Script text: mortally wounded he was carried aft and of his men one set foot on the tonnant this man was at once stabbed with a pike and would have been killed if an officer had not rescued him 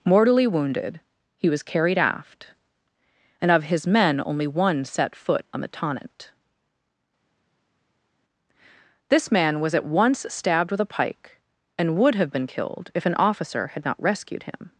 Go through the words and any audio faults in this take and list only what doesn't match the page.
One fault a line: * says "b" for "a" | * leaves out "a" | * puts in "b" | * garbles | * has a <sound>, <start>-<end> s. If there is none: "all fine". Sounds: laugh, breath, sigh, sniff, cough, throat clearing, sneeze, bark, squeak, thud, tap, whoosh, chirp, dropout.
* puts in "only"